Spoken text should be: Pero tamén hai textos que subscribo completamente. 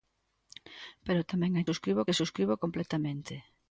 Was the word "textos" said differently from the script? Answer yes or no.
yes